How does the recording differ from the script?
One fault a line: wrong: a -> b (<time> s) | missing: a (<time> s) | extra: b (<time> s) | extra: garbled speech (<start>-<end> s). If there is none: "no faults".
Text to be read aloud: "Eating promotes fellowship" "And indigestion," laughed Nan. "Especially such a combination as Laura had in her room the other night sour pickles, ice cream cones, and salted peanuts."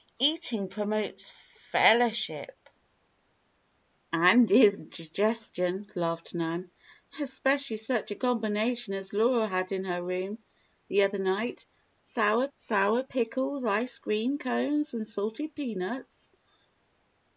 extra: sour (12.5 s)